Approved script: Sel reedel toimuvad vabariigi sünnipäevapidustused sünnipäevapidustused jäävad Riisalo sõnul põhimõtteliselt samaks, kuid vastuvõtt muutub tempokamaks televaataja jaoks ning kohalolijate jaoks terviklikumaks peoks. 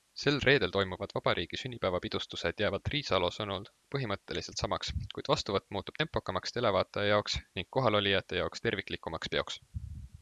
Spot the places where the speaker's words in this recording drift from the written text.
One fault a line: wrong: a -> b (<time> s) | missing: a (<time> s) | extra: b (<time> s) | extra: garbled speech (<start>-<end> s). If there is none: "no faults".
missing: sünnipäevapidustused (2.6 s)